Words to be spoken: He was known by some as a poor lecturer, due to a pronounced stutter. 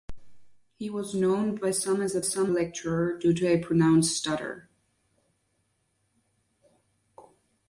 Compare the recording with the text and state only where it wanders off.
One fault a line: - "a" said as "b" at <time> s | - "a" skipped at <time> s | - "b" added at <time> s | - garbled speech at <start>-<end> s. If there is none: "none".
- "poor" said as "some" at 2.2 s